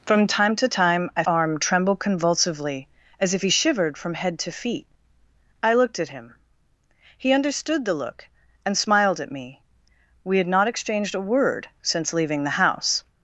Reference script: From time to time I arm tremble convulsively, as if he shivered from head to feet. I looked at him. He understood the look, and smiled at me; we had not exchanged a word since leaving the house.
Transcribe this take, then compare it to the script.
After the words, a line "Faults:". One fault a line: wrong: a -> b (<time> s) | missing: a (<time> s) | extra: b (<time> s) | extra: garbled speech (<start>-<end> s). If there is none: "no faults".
From time to time I arm tremble convulsively, as if he shivered from head to feet. I looked at him. He understood the look, and smiled at me; we had not exchanged a word since leaving the house.
Faults:
no faults